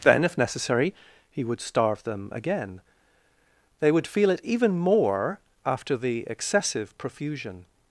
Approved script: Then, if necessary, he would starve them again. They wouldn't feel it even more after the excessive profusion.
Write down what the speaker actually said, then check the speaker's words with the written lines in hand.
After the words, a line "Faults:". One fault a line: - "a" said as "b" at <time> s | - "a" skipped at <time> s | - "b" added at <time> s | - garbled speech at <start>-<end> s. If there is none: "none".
Then, if necessary, he would starve them again. They would feel it even more after the excessive profusion.
Faults:
- "wouldn't" said as "would" at 3.9 s